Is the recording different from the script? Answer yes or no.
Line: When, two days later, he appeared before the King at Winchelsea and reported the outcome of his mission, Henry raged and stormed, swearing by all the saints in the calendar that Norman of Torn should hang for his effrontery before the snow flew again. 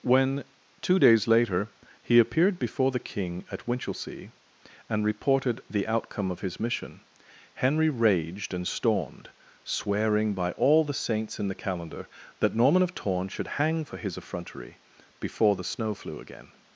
no